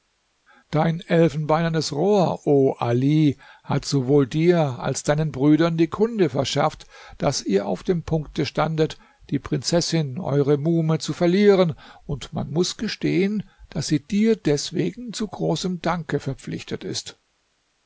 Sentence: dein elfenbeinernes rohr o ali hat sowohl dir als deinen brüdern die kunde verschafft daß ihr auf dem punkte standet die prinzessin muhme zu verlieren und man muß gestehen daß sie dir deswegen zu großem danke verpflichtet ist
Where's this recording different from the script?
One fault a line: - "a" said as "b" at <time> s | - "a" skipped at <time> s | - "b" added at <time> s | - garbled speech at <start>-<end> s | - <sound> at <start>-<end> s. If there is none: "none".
- "eure" added at 10.2 s